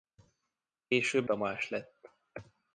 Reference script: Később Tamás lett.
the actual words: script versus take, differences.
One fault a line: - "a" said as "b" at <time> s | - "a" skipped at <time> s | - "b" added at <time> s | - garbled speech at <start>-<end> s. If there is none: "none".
none